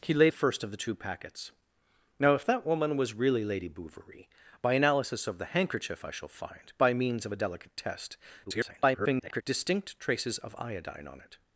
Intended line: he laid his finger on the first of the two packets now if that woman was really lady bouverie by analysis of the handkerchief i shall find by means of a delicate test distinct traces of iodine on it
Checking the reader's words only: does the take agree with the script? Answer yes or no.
no